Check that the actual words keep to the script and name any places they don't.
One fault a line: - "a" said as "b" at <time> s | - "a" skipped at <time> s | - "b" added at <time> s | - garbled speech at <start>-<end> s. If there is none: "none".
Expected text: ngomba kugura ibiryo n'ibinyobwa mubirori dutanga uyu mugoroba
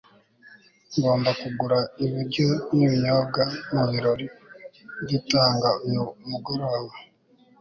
none